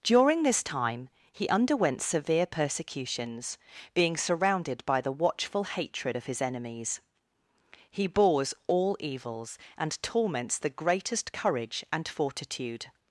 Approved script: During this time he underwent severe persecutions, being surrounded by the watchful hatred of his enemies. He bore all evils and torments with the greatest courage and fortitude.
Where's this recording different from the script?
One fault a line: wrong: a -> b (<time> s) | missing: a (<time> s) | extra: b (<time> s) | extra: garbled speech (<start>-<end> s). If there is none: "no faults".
wrong: bore -> bores (8.1 s)
missing: with (10.6 s)